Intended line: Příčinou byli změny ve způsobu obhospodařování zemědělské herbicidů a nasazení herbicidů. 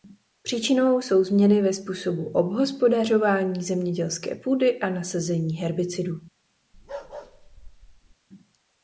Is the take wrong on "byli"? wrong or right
wrong